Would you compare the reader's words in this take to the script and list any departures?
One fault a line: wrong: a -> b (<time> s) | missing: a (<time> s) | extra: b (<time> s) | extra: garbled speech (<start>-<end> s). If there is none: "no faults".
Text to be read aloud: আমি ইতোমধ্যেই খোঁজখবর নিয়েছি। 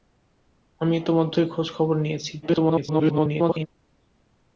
extra: garbled speech (2.4-3.7 s)